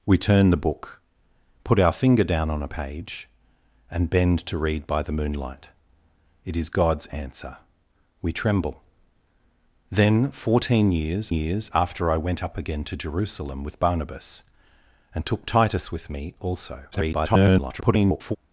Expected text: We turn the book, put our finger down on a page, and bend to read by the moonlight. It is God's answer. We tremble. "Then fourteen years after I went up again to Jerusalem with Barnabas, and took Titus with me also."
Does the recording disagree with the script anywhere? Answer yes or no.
yes